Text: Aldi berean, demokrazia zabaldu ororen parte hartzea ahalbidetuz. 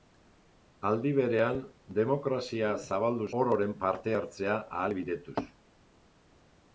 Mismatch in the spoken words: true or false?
false